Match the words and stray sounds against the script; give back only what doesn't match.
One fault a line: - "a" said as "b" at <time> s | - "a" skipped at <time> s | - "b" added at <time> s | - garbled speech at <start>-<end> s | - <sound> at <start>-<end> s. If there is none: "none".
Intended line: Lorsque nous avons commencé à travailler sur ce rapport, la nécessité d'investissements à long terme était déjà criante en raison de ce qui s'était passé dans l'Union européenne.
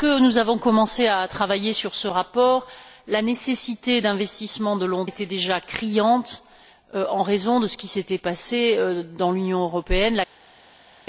- "terme" skipped at 5.0 s